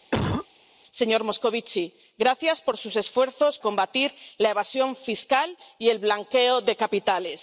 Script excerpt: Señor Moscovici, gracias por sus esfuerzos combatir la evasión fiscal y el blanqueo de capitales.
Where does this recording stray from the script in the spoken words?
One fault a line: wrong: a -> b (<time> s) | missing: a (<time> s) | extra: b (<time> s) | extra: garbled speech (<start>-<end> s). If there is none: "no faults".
no faults